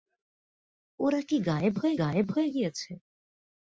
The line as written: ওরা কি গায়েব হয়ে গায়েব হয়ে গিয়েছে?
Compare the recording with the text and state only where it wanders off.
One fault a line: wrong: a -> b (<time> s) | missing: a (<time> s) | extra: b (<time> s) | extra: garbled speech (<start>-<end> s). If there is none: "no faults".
no faults